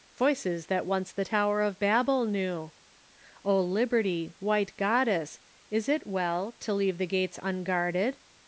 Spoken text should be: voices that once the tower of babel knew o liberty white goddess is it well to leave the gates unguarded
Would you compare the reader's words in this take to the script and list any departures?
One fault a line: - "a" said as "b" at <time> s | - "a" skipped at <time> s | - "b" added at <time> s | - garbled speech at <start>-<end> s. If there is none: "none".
none